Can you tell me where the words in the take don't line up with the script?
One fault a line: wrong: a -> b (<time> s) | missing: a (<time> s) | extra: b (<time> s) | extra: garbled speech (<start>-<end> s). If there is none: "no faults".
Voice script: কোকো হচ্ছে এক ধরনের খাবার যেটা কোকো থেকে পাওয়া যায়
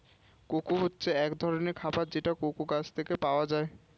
extra: গাছ (2.7 s)